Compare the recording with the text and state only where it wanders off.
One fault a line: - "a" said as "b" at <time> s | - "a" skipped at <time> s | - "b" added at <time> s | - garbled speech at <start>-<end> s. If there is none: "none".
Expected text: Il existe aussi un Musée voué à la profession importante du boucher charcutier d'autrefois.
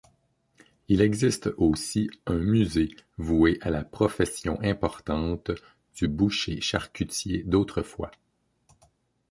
none